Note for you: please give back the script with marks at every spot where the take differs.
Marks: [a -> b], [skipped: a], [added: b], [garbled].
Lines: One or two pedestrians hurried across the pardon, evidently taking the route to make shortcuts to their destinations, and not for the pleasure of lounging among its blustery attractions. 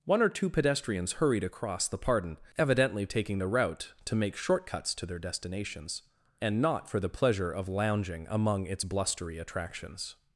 One or two pedestrians hurried across the pardon, evidently taking the route to make shortcuts to their destinations, and not for the pleasure of lounging among its blustery attractions.